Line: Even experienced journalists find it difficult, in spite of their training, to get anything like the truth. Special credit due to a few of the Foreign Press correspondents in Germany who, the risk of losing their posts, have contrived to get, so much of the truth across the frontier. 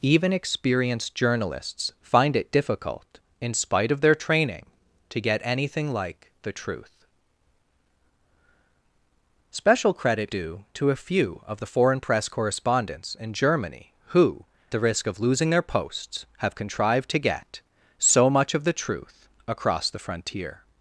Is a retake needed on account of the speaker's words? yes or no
no